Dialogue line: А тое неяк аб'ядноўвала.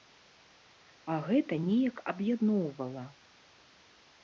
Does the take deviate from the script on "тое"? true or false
true